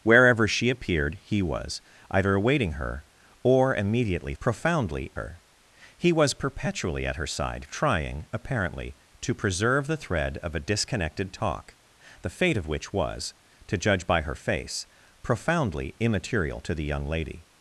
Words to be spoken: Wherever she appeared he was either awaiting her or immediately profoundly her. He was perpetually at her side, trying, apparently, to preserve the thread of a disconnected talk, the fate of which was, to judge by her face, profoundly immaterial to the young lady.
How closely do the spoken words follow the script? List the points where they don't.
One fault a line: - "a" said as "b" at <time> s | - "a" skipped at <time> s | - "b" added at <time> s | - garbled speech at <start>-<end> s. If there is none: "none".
none